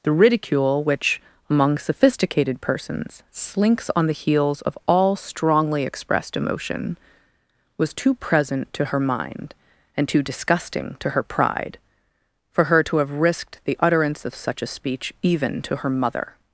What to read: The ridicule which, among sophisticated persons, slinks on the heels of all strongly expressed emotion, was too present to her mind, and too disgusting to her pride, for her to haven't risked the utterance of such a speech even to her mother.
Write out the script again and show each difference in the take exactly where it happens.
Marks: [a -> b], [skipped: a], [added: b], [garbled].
The ridicule which, among sophisticated persons, slinks on the heels of all strongly expressed emotion, was too present to her mind, and too disgusting to her pride, for her to [haven't -> have] risked the utterance of such a speech even to her mother.